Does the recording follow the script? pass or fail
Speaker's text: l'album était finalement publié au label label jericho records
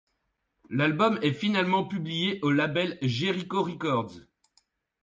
fail